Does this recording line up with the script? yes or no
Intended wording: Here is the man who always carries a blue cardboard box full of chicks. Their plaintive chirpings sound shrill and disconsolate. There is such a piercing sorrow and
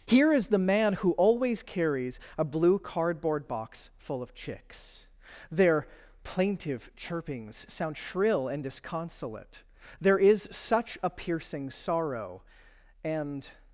yes